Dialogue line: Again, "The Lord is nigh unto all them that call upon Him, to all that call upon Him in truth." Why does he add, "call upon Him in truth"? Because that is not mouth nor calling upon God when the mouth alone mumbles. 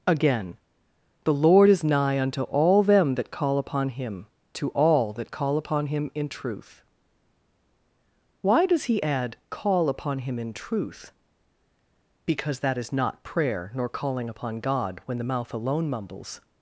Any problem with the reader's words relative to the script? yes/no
yes